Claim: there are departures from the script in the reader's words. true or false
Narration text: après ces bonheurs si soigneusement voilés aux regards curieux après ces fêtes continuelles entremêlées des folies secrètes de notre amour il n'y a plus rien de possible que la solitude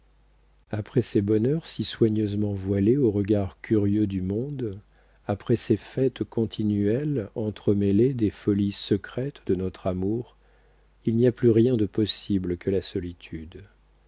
true